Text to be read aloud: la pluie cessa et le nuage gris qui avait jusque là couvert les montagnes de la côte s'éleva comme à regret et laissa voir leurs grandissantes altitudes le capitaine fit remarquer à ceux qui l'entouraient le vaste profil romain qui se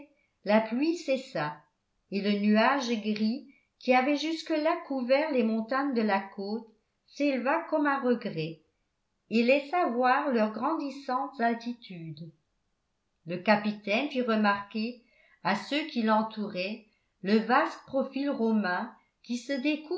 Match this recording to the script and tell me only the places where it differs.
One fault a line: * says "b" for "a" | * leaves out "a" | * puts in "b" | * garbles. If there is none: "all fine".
all fine